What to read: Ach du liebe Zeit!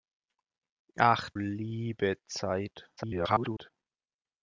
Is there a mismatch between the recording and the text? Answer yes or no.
yes